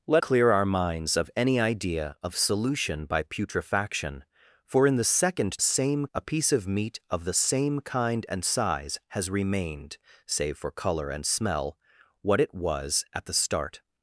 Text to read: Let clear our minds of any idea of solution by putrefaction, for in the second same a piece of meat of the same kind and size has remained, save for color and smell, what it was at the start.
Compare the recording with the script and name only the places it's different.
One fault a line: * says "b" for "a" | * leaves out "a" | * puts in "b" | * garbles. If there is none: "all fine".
all fine